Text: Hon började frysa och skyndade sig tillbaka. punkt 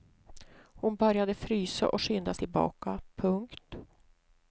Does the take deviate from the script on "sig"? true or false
true